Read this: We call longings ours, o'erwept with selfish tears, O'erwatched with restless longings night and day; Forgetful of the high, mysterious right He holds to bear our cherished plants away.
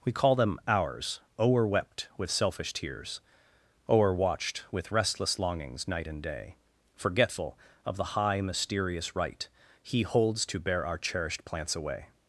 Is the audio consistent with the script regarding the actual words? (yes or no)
no